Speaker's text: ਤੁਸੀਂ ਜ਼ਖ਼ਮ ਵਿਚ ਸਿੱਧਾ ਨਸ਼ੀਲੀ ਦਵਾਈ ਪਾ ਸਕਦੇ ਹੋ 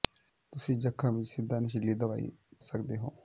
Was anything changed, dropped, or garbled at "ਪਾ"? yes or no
yes